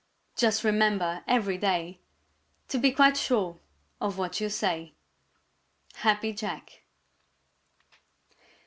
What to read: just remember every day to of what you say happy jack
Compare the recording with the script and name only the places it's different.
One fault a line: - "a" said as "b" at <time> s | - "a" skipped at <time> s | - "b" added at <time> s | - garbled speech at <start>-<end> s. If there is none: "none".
- "be quite sure" added at 2.8 s